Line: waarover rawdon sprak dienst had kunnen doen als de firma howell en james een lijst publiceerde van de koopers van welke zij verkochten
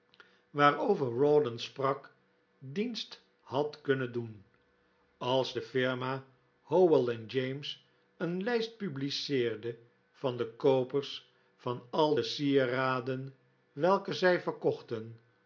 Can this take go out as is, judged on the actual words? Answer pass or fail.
fail